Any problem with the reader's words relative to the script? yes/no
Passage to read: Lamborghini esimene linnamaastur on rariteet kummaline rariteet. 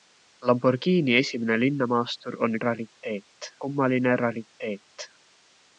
no